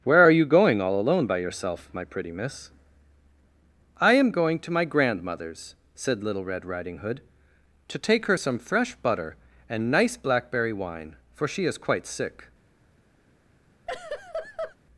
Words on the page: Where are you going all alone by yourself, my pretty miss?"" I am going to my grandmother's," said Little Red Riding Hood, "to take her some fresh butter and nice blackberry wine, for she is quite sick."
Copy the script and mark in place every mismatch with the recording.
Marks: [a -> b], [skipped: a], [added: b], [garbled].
Where are you going all alone by yourself, my pretty miss?"" I am going to my grandmother's," said Little Red Riding Hood, "to take her some fresh butter and nice blackberry wine, for she is quite sick."